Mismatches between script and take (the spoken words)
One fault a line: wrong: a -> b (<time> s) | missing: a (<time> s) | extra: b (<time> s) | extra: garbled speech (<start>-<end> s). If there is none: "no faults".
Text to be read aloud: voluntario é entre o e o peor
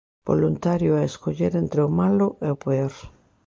extra: escoller (1.1 s)
extra: malo (2.0 s)